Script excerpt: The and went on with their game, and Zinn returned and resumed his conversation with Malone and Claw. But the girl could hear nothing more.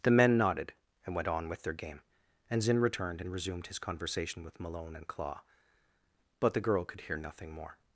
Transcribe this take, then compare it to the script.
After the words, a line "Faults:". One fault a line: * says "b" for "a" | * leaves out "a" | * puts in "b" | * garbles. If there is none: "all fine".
The men nodded, and went on with their game, and Zinn returned and resumed his conversation with Malone and Claw. But the girl could hear nothing more.
Faults:
* puts in "men nodded"